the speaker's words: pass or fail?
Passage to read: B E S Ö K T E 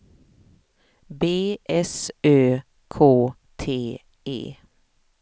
fail